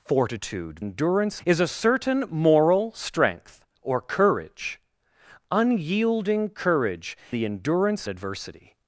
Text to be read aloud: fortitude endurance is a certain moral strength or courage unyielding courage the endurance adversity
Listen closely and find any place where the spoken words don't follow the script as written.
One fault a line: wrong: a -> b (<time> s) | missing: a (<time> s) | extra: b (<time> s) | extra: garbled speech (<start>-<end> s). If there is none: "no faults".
no faults